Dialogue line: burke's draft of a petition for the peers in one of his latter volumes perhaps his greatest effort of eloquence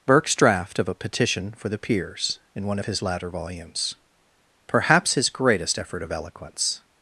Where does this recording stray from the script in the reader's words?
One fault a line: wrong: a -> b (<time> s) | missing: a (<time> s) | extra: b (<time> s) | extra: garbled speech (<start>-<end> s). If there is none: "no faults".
no faults